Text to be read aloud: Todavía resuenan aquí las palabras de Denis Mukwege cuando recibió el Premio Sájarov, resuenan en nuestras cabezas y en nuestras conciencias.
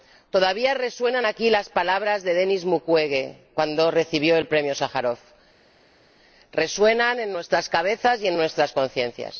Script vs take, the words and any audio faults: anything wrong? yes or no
no